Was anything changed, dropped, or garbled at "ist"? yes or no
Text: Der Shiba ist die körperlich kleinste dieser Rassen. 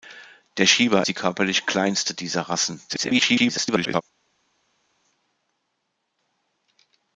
yes